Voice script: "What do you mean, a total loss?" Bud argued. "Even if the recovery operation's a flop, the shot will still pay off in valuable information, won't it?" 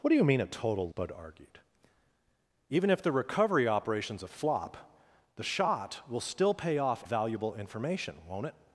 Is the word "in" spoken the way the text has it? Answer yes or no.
no